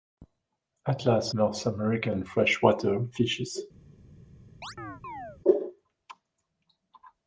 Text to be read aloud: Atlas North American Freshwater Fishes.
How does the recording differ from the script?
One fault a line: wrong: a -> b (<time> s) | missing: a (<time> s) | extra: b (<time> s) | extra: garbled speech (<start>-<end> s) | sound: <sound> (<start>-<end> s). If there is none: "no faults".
sound: chirp (4.6-5.4 s)